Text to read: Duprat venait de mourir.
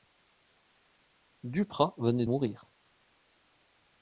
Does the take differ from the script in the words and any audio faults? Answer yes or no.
yes